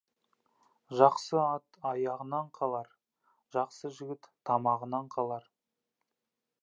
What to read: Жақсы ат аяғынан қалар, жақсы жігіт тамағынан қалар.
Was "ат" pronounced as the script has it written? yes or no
yes